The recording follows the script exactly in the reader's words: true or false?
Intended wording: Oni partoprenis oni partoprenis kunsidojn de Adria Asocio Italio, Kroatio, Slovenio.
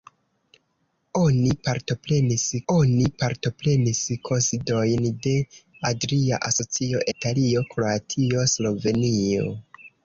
true